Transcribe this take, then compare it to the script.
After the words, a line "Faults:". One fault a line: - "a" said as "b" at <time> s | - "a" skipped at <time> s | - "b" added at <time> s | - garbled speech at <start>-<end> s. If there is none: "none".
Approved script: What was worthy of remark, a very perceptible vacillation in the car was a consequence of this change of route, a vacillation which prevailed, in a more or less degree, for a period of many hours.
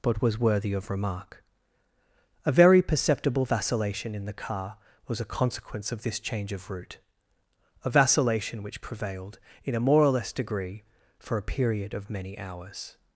But was worthy of remark, a very perceptible vacillation in the car was a consequence of this change of route, a vacillation which prevailed, in a more or less degree, for a period of many hours.
Faults:
- "What" said as "But" at 0.0 s